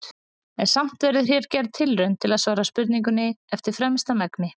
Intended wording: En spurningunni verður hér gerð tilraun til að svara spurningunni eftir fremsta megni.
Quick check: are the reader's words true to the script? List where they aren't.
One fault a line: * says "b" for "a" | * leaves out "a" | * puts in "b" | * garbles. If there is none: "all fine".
* says "samt" for "spurningunni"